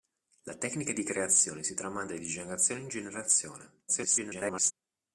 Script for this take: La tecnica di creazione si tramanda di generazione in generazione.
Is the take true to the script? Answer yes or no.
no